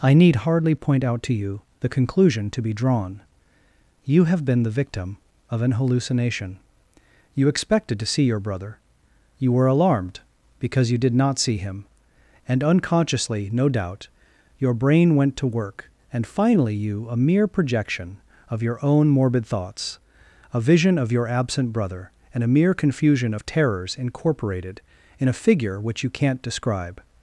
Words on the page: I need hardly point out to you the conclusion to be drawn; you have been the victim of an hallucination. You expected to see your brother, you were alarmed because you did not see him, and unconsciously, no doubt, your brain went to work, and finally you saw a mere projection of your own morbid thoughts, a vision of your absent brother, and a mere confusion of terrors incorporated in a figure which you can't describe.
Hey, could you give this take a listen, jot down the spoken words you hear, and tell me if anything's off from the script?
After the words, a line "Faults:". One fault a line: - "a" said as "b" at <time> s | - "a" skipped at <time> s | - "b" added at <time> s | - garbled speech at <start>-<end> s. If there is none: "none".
I need hardly point out to you the conclusion to be drawn; you have been the victim of an hallucination. You expected to see your brother, you were alarmed because you did not see him, and unconsciously, no doubt, your brain went to work, and finally you a mere projection of your own morbid thoughts, a vision of your absent brother, and a mere confusion of terrors incorporated in a figure which you can't describe.
Faults:
- "saw" skipped at 17.1 s